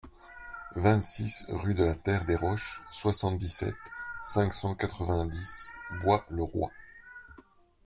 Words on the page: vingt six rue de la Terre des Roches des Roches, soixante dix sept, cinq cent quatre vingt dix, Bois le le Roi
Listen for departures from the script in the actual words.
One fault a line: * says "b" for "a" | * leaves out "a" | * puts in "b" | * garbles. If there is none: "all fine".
* leaves out "des Roches"
* leaves out "le"